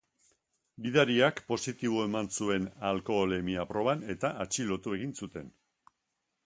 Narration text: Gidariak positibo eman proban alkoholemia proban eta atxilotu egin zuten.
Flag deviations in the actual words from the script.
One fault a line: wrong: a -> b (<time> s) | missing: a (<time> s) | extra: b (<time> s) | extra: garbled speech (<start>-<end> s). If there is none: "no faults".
wrong: proban -> zuen (2.4 s)